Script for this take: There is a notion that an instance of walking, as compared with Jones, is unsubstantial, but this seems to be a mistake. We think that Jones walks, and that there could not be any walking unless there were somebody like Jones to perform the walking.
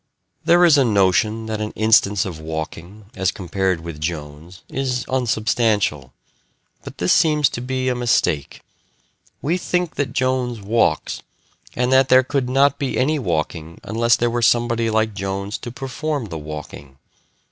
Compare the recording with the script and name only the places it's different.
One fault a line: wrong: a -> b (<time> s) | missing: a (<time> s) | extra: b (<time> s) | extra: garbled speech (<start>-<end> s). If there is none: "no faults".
no faults